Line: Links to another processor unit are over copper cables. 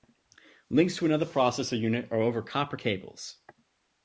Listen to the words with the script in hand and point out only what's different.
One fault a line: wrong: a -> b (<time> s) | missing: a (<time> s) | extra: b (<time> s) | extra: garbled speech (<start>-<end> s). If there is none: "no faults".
no faults